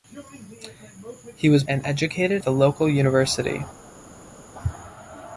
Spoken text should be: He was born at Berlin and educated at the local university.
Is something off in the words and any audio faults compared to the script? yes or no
yes